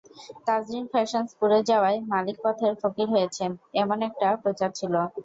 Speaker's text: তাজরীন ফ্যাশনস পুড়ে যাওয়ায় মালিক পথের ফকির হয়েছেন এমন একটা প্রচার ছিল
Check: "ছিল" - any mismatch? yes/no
no